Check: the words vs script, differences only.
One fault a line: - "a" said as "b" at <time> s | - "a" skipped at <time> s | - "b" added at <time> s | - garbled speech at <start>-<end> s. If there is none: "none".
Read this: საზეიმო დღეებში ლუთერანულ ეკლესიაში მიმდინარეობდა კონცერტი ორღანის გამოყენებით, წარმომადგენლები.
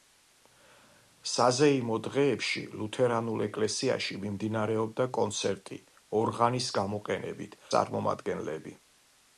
none